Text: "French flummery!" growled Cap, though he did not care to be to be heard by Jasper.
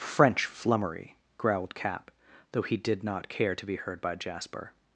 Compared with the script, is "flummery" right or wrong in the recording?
right